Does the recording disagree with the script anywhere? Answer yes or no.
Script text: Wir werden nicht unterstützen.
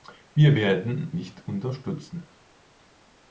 no